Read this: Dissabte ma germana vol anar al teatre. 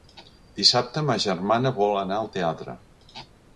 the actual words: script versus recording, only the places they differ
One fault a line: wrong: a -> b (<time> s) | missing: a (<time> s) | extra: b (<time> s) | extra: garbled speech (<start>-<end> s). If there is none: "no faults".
no faults